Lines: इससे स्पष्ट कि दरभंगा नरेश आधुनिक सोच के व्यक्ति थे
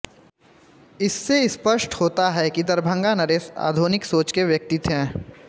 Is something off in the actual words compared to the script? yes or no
yes